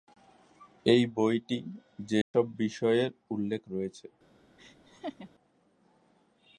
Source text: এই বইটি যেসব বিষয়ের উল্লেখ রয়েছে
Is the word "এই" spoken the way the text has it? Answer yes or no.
yes